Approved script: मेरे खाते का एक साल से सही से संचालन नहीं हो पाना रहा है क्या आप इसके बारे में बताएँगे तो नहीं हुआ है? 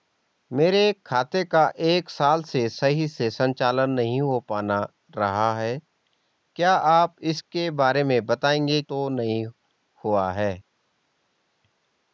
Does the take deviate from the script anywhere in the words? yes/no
no